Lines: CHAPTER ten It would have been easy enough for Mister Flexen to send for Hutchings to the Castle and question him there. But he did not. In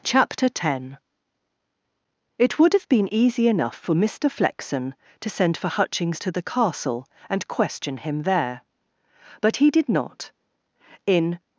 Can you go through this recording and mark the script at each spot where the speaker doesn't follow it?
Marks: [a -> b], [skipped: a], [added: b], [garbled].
CHAPTER ten It would have been easy enough for Mister Flexen to send for Hutchings to the Castle and question him there. But he did not. In